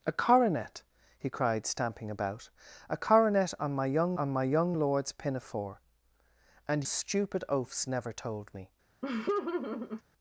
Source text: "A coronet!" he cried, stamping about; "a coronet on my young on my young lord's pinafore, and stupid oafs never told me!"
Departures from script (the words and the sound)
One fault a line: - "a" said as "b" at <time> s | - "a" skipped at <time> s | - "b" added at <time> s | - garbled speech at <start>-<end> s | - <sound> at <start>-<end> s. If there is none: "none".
- laugh at 9.0-10.0 s